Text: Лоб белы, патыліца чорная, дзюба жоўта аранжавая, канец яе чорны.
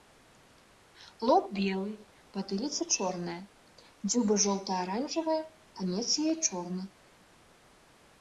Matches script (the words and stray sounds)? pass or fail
pass